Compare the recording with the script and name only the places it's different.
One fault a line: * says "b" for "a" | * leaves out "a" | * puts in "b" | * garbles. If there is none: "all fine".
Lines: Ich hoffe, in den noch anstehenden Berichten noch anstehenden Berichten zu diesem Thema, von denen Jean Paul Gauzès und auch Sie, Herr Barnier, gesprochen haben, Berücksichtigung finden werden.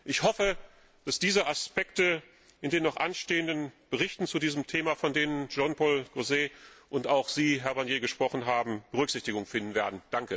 * says "dass diese Aspekte in den" for "in den noch anstehenden Berichten"